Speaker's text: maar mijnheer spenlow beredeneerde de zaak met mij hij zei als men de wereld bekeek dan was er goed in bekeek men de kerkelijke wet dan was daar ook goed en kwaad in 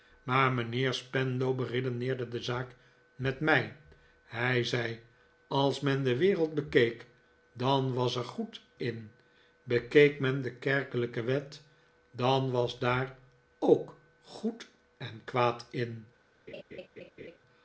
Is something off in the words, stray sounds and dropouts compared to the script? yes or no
yes